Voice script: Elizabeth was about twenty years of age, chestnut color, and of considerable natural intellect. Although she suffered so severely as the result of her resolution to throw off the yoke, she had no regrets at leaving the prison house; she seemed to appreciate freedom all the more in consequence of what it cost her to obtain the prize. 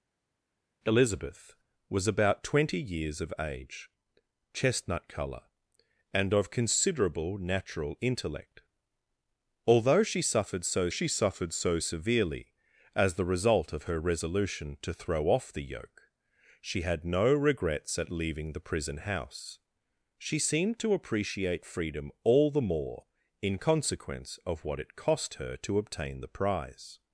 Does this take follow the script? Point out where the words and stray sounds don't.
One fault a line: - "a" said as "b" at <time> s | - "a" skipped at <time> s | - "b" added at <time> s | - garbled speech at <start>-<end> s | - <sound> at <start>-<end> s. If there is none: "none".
- "she suffered so" added at 10.9 s